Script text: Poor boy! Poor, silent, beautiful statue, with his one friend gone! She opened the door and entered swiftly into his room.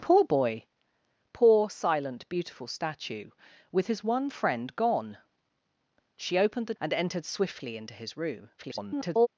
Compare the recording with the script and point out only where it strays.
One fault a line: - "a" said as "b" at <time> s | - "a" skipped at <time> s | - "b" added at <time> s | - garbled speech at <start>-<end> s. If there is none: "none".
- "door" skipped at 6.7 s
- garbled speech at 8.6-9.3 s